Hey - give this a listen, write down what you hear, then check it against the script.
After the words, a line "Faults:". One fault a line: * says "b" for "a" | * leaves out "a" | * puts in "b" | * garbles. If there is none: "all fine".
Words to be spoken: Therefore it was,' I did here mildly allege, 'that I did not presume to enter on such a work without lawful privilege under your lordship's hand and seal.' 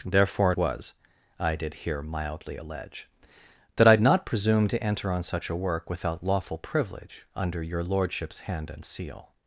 Therefore was,' I did here mildly allege, 'that I not presume to enter on such a work without lawful privilege under your lordship's hand and seal.'
Faults:
* leaves out "it"
* leaves out "did"